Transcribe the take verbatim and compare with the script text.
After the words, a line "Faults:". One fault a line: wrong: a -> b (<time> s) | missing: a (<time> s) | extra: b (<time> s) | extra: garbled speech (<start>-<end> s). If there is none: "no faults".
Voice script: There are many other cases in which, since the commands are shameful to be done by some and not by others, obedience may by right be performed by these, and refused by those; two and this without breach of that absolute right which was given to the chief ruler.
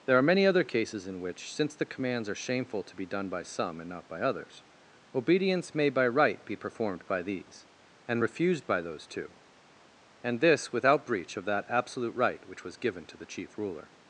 There are many other cases in which, since the commands are shameful to be done by some and not by others, obedience may by right be performed by these, and refused by those; two and this without breach of that absolute right which was given to the chief ruler.
Faults:
no faults